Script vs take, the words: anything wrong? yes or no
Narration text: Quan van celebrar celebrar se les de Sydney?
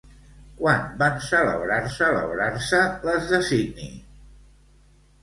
no